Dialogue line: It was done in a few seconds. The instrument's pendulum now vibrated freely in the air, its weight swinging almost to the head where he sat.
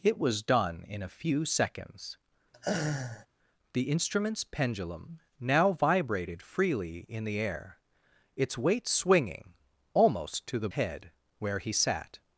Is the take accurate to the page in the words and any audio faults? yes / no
no